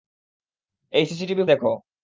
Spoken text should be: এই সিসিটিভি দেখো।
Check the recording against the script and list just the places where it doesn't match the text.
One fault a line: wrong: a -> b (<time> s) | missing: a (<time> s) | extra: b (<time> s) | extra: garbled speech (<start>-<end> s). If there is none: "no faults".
no faults